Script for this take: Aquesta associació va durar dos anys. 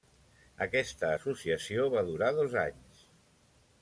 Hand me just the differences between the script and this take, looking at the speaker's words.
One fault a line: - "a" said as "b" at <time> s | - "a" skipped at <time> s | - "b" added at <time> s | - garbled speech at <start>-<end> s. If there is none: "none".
none